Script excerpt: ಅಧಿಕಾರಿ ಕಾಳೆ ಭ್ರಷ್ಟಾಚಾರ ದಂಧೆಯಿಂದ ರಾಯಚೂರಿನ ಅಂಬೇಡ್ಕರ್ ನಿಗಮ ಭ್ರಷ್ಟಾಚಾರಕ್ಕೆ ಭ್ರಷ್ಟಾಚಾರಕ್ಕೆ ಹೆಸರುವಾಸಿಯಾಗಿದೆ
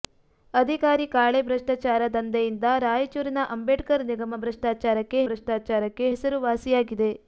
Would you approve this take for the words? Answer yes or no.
yes